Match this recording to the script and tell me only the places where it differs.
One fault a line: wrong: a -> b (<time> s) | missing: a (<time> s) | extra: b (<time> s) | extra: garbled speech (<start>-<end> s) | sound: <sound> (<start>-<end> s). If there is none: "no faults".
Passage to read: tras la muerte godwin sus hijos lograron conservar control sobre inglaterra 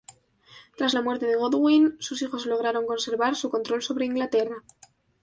extra: de (1.2 s)
extra: su (3.3 s)